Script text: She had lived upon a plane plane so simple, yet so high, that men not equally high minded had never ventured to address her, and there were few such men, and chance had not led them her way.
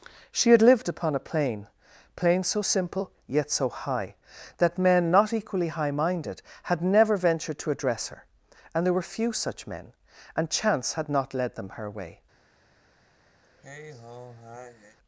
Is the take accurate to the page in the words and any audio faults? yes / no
no